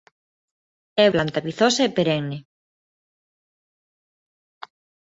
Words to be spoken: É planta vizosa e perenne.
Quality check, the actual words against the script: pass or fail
pass